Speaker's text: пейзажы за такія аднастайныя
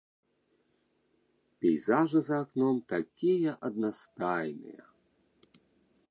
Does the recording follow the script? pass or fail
fail